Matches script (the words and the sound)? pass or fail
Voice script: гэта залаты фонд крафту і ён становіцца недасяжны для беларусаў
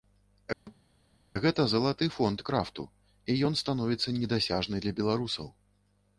fail